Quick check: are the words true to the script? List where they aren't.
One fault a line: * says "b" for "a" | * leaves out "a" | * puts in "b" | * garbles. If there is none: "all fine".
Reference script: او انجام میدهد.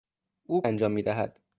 all fine